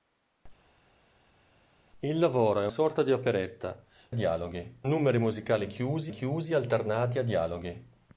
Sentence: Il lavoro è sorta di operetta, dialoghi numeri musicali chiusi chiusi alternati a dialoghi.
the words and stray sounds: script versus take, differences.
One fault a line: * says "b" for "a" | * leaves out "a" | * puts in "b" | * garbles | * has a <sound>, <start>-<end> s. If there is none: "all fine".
all fine